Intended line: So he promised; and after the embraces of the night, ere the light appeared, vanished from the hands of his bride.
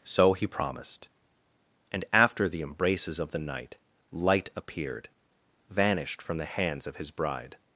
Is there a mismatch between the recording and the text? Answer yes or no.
yes